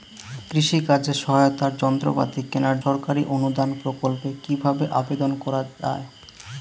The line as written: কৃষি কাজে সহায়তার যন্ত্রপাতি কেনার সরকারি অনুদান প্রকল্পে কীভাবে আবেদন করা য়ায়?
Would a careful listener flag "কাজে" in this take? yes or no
no